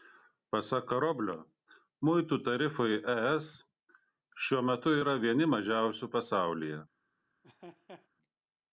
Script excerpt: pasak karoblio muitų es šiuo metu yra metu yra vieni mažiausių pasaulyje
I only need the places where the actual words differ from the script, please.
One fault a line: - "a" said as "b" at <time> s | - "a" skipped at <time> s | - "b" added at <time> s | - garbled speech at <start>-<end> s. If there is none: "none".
- "tarifai" added at 2.5 s
- "metu yra" skipped at 5.2 s